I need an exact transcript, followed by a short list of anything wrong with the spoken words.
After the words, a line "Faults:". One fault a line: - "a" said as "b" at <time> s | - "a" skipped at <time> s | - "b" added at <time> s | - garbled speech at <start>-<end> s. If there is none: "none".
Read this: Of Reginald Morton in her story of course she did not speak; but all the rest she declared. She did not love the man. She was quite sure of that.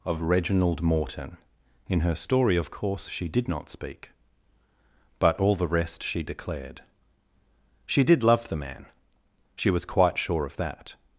Of Reginald Morton in her story of course she did not speak; but all the rest she declared. She did love the man. She was quite sure of that.
Faults:
- "not" skipped at 8.2 s